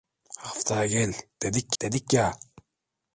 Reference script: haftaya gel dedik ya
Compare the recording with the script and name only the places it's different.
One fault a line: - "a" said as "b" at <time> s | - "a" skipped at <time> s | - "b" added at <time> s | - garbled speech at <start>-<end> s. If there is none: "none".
- "dedik" added at 1.8 s